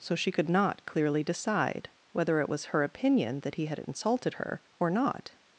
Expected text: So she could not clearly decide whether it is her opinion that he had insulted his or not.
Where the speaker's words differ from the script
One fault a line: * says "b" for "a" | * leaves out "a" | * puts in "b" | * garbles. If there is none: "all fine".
* says "was" for "is"
* says "her" for "his"